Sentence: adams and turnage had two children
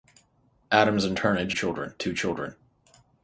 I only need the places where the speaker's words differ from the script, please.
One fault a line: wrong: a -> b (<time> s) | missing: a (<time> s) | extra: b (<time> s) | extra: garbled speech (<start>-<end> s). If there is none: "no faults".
wrong: had -> children (1.5 s)